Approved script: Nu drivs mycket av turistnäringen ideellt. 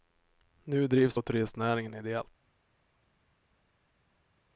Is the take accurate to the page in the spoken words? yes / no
no